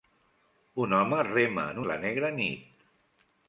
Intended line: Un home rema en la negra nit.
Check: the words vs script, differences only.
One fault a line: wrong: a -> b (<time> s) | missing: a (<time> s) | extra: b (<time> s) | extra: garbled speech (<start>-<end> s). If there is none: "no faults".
no faults